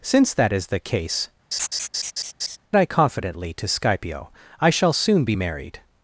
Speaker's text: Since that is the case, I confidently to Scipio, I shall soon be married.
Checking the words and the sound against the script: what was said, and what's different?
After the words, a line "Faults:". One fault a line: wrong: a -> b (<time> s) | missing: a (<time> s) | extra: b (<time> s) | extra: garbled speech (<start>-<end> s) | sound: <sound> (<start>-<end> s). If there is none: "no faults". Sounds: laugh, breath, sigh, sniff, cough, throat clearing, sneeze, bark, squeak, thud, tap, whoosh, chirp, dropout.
Since that is the case, I confidently to Scipio, I shall soon be married.
Faults:
sound: laugh (1.5-2.6 s)